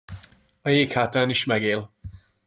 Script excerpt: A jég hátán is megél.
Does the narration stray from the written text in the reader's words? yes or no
no